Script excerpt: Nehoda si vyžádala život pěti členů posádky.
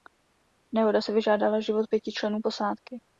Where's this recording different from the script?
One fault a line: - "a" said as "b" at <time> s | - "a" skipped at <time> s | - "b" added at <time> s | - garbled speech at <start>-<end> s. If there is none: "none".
none